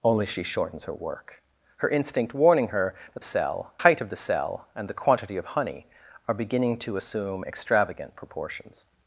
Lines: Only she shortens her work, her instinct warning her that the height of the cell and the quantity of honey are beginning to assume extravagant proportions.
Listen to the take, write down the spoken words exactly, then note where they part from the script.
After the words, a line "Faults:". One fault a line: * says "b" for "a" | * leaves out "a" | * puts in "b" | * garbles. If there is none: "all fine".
Only she shortens her work, her instinct warning her that cell height of the cell and the quantity of honey are beginning to assume extravagant proportions.
Faults:
* says "cell" for "the"